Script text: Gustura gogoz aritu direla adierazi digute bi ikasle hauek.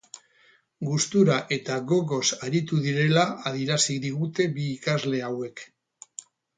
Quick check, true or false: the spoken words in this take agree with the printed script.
false